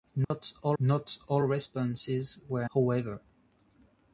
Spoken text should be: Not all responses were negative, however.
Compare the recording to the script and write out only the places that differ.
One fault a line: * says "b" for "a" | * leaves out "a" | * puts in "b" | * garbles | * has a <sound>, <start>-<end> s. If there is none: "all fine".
* has a dropout, 0.2-0.3 s
* puts in "not all"
* leaves out "negative"